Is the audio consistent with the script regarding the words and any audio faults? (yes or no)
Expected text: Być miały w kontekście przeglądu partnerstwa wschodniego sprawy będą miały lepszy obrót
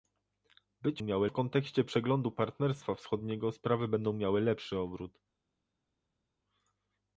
yes